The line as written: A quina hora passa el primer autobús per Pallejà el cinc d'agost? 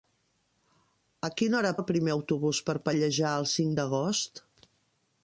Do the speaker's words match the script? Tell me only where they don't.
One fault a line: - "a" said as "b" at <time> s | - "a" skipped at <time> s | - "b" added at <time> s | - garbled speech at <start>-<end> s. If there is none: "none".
- "passa" skipped at 1.7 s